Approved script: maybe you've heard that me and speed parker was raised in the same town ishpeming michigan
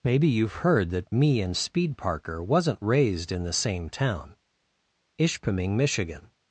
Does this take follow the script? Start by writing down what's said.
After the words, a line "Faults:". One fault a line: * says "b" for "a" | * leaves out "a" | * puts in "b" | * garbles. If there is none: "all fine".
maybe you've heard that me and speed parker wasn't raised in the same town ishpeming michigan
Faults:
* says "wasn't" for "was"